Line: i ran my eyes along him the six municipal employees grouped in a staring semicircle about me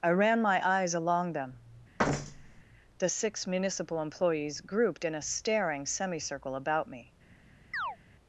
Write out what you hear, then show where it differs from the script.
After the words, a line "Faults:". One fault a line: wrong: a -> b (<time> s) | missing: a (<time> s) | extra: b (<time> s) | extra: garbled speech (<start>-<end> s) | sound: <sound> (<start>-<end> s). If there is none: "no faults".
i ran my eyes along them the six municipal employees grouped in a staring semicircle about me
Faults:
wrong: him -> them (1.3 s)
sound: thud (2.0-2.6 s)
sound: chirp (7.7-8.0 s)